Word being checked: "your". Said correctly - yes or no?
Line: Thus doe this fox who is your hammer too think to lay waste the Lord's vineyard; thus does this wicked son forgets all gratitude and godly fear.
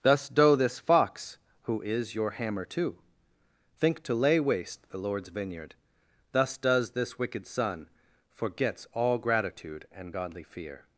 yes